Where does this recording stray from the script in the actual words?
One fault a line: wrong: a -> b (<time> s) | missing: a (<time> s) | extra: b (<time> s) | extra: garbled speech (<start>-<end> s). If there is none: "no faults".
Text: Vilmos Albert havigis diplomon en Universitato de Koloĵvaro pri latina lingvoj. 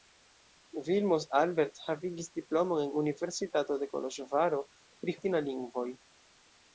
no faults